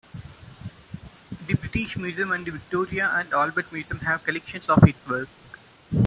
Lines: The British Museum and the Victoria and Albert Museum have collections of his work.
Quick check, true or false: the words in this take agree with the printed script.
true